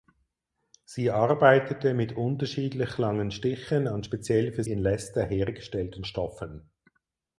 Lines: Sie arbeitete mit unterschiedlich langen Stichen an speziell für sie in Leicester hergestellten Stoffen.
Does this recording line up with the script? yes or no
no